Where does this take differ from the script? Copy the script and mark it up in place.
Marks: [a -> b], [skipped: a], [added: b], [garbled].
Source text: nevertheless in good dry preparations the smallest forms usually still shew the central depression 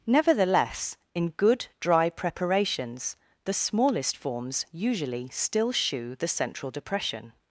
nevertheless in good dry preparations the smallest forms usually still shew the central depression